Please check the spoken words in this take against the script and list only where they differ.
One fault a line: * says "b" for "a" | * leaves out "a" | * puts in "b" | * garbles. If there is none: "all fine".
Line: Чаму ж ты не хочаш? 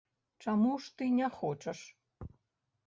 all fine